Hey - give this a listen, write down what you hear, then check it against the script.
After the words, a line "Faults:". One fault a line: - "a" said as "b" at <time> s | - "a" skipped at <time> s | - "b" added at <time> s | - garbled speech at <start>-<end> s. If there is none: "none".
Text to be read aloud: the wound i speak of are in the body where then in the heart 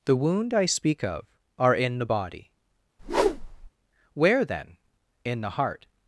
the wound i speak of are in the body where then in the heart
Faults:
none